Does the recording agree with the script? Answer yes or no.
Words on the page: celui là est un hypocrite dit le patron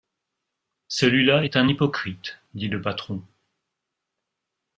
yes